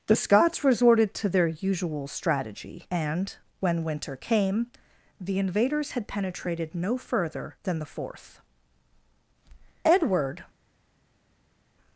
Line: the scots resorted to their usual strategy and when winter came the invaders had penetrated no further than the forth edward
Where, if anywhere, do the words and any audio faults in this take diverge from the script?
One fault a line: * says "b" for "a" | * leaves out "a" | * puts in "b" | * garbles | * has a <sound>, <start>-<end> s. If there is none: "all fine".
all fine